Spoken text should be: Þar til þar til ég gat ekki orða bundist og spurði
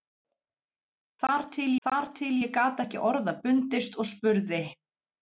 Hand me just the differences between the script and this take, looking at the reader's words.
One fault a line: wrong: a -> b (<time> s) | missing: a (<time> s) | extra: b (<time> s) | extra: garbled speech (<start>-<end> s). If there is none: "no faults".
no faults